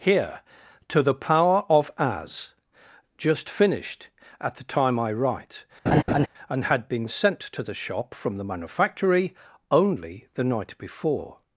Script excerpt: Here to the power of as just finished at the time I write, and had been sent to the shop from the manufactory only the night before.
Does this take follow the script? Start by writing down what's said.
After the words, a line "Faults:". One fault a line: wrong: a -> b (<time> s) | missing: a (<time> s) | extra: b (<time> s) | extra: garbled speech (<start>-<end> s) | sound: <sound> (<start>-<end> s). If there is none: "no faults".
Here to the power of as just finished at the time I write, and had been sent to the shop from the manufactory only the night before.
Faults:
sound: laugh (5.9-6.3 s)